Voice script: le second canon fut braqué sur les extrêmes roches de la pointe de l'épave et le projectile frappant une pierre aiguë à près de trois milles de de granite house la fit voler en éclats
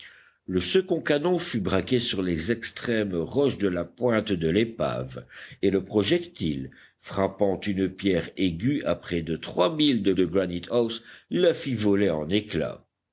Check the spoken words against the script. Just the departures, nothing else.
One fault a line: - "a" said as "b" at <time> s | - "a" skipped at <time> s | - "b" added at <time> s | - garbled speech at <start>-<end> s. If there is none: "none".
none